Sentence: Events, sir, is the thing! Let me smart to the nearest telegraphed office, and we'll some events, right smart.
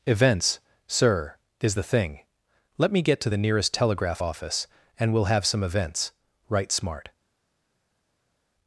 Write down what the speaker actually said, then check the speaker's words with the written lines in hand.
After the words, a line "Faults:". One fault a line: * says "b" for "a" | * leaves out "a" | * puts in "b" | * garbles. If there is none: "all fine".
Events, sir, is the thing! Let me get to the nearest telegraph office, and we'll have some events, right smart.
Faults:
* says "get" for "smart"
* says "telegraph" for "telegraphed"
* puts in "have"